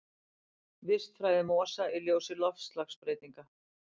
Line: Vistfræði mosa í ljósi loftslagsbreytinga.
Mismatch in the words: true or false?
false